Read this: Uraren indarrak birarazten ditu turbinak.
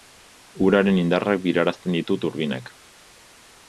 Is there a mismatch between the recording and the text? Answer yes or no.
no